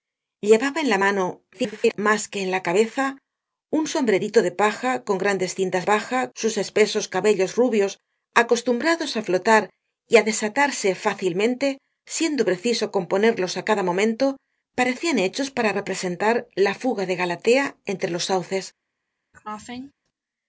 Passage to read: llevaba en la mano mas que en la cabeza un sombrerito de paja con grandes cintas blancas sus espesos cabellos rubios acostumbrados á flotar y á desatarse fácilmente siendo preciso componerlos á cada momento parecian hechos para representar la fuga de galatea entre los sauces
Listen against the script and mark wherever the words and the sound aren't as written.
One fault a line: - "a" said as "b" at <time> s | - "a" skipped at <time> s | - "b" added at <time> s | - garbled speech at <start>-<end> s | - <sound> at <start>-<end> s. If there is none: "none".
- garbled speech at 1.5-2.0 s
- "blancas" said as "paja" at 5.9 s
- cough at 19.3-19.9 s